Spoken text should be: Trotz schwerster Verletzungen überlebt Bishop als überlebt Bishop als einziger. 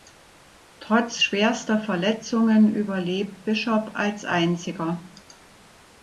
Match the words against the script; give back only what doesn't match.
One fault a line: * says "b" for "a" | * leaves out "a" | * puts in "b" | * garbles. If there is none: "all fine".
* leaves out "überlebt Bishop als"